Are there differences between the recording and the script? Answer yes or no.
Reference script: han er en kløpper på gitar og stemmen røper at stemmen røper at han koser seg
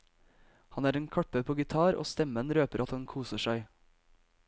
yes